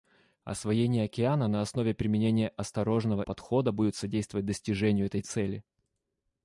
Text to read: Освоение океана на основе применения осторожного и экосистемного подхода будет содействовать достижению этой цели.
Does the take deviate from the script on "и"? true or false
true